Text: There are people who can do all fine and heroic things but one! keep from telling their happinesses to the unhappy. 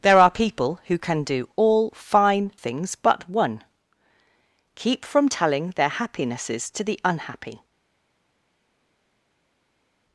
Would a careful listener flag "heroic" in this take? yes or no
yes